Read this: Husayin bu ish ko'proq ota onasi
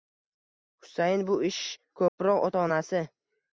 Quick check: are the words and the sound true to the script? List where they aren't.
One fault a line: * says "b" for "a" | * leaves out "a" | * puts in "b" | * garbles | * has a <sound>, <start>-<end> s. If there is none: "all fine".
* has a dropout, 2.1-2.2 s